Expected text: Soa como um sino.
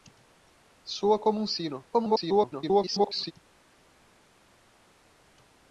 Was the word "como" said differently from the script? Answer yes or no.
no